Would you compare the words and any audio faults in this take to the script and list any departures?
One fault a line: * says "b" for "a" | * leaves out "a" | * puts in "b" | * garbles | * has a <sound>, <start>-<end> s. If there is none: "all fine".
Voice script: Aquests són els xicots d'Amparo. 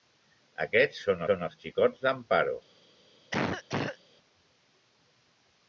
* puts in "són"
* has a cough, 3.3-4.0 s